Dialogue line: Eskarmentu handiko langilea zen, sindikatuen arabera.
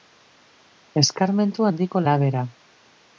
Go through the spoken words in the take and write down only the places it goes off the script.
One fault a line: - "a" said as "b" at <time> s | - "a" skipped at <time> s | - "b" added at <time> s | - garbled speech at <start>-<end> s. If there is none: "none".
- "langilea zen sindikatuen" skipped at 2.0 s